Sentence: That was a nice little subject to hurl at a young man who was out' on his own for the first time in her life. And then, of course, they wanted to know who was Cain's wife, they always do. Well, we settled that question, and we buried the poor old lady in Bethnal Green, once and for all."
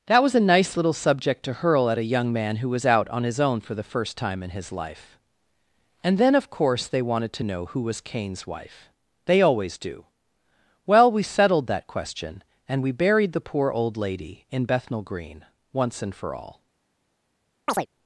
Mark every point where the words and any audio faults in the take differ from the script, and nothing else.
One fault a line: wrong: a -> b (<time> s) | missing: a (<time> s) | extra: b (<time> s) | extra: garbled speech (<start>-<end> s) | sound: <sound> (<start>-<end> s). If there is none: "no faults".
wrong: her -> his (4.5 s)
sound: chirp (17.7-17.9 s)